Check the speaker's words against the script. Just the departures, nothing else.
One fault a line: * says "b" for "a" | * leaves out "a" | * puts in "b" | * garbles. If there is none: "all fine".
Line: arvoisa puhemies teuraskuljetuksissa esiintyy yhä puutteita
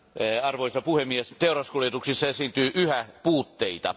all fine